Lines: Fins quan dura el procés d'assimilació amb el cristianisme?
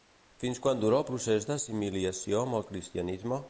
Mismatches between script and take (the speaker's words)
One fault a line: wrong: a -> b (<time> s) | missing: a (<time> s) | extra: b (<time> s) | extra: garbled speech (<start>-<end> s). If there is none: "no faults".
no faults